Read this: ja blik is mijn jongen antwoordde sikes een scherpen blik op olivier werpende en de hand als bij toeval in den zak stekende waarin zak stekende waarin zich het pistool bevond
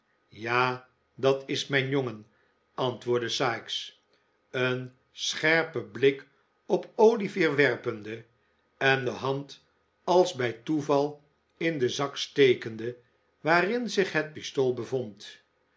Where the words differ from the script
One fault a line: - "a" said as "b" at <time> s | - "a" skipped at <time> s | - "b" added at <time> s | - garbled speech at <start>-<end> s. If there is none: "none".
- "blik" said as "dat" at 1.1 s
- "zak stekende waarin" skipped at 13.9 s